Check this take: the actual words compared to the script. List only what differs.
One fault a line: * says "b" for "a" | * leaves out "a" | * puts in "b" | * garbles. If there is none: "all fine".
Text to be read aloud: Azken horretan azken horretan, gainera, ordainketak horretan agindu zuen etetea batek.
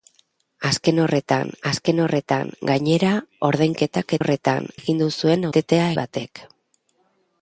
all fine